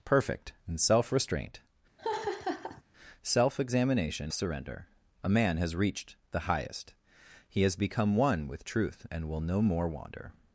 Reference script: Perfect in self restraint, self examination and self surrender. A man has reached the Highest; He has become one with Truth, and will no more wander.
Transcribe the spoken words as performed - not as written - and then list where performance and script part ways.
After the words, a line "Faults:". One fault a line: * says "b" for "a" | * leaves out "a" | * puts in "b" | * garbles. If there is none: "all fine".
Perfect in self restraint, self examination surrender. A man has reached the Highest; He has become one with Truth, and will no more wander.
Faults:
* leaves out "and self"